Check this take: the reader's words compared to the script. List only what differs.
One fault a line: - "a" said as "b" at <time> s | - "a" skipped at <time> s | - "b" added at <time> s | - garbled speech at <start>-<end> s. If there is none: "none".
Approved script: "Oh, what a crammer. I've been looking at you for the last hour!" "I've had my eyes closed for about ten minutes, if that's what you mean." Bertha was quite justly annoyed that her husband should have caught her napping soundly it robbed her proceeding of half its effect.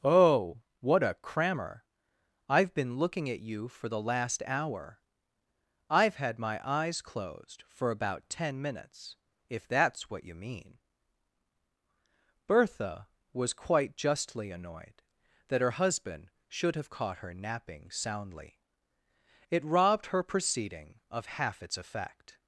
none